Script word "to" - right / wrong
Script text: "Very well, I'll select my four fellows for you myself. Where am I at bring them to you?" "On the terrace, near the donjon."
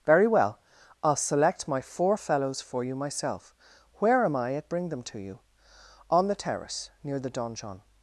right